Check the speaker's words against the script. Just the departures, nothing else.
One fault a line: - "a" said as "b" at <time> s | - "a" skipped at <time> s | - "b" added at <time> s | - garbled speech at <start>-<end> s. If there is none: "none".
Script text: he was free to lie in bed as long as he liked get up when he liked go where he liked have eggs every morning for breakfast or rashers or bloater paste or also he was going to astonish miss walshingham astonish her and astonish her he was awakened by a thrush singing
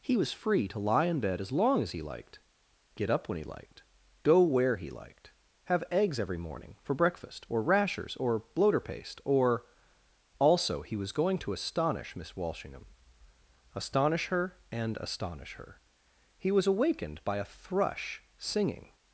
none